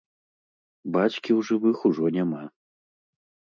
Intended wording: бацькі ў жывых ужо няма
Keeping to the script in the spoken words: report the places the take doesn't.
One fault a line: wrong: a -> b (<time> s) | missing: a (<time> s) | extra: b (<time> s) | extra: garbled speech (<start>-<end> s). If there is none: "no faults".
no faults